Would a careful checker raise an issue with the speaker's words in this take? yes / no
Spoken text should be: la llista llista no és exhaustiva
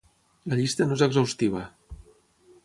yes